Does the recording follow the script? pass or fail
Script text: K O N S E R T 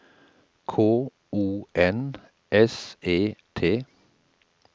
fail